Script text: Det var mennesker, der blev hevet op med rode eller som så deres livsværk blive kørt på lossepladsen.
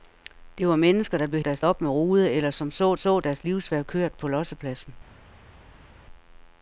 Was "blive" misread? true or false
true